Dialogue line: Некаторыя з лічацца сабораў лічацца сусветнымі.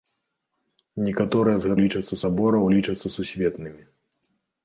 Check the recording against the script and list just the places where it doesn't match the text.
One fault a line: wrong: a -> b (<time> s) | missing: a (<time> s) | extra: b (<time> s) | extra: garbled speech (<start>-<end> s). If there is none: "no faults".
no faults